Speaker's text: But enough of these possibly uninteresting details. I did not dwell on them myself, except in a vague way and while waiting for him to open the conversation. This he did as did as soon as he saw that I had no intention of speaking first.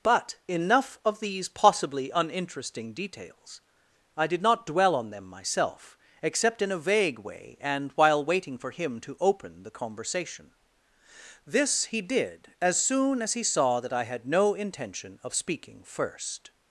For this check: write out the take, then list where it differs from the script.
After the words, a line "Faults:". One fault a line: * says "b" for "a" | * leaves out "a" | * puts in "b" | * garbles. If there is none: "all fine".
But enough of these possibly uninteresting details. I did not dwell on them myself, except in a vague way and while waiting for him to open the conversation. This he did as soon as he saw that I had no intention of speaking first.
Faults:
* leaves out "did as"